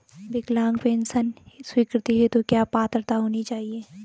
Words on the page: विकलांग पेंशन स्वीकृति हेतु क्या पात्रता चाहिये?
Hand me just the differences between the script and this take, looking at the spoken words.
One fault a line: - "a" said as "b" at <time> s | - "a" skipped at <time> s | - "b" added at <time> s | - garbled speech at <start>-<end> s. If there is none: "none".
- "होनी" added at 3.2 s